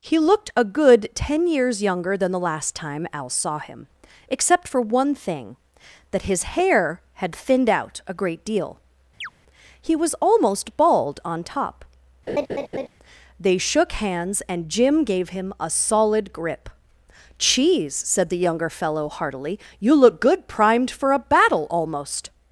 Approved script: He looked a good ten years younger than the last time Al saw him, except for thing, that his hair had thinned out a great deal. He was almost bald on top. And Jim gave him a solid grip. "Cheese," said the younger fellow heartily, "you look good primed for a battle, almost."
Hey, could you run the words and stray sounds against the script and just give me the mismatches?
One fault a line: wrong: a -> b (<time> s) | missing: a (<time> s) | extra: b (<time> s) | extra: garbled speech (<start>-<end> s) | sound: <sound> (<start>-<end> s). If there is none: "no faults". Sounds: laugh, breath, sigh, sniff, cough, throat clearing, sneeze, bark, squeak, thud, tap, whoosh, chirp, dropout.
extra: one (4.8 s)
sound: chirp (9.2-9.3 s)
sound: laugh (12.3-12.9 s)
extra: They shook hands (13.4 s)